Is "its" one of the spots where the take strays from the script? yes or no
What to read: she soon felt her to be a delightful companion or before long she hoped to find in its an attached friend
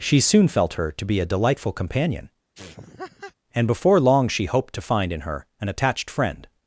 yes